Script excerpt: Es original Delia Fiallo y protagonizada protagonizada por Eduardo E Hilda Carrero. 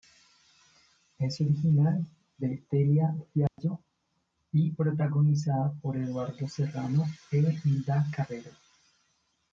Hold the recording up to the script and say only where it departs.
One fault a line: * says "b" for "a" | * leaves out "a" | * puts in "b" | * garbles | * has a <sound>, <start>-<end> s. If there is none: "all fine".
* puts in "de"
* has a dropout, 3.5-3.6 s
* leaves out "protagonizada"
* puts in "Serrano"